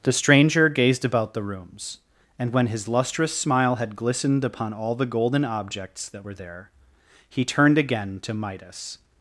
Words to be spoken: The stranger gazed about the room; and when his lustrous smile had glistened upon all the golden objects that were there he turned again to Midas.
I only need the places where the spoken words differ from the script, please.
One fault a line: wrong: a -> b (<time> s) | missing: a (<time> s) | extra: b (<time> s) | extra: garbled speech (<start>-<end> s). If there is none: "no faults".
wrong: room -> rooms (1.4 s)